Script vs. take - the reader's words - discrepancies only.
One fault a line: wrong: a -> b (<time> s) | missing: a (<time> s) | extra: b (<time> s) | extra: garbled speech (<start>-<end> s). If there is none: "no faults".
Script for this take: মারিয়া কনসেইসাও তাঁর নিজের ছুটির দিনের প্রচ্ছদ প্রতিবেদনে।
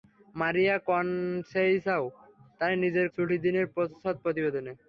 no faults